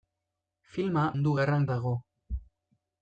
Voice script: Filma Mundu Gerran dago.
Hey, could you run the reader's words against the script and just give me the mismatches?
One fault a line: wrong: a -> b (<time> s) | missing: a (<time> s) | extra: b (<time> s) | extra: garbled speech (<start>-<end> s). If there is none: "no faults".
no faults